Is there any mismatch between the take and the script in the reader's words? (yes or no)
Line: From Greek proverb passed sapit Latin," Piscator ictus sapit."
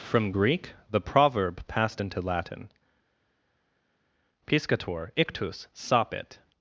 yes